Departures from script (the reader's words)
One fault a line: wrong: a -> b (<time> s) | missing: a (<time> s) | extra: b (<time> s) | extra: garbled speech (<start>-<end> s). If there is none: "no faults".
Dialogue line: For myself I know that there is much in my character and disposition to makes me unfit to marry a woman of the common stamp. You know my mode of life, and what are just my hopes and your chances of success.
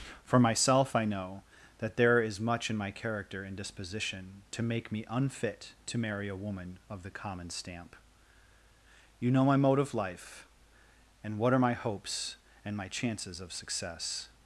wrong: makes -> make (4.6 s)
missing: just (11.6 s)
wrong: your -> my (12.8 s)